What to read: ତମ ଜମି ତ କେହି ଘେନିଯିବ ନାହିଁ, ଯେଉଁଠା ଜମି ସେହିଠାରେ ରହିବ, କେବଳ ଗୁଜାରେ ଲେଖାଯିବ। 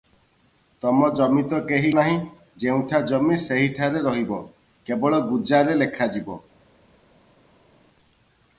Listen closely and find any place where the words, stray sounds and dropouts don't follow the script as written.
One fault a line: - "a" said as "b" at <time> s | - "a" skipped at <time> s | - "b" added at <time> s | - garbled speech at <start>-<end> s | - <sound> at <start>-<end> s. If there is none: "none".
- "ଘେନିଯିବ" skipped at 1.9 s